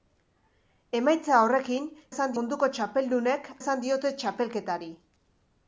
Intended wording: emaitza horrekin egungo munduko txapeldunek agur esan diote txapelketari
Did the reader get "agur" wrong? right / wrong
wrong